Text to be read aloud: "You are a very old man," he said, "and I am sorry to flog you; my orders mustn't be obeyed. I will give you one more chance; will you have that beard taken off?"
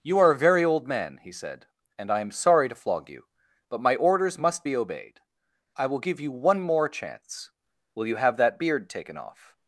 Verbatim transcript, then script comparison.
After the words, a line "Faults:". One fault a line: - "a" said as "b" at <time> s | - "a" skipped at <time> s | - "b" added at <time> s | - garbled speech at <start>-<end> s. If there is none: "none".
"You are a very old man," he said, "and I am sorry to flog you; but my orders must be obeyed. I will give you one more chance; will you have that beard taken off?"
Faults:
- "but" added at 3.7 s
- "mustn't" said as "must" at 4.4 s